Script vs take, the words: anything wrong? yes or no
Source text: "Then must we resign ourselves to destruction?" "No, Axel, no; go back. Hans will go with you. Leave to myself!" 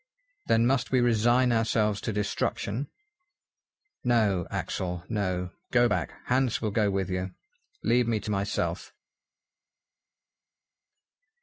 yes